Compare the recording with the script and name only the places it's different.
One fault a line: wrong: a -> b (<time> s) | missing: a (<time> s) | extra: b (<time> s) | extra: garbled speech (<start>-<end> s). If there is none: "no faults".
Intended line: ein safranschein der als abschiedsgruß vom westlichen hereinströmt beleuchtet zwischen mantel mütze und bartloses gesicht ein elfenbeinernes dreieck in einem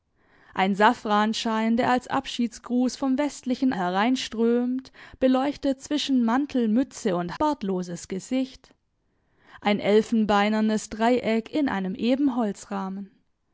no faults